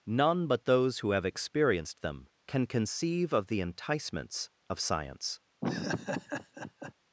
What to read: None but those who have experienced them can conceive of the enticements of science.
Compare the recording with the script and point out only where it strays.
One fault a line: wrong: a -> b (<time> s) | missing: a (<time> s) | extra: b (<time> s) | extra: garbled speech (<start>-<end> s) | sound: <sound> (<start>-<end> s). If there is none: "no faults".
sound: laugh (5.6-6.9 s)